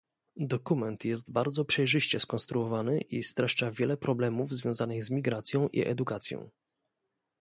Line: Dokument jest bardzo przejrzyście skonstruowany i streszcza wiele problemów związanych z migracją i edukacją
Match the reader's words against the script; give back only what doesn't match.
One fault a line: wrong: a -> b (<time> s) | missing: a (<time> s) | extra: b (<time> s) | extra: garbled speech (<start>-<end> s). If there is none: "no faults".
no faults